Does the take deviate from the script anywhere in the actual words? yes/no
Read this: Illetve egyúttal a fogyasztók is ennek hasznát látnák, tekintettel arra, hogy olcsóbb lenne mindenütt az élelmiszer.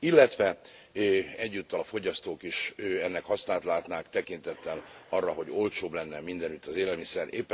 no